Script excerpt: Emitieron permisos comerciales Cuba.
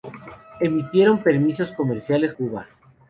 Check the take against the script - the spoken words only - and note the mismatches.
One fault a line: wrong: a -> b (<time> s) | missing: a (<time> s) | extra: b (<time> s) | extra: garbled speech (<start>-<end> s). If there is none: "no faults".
no faults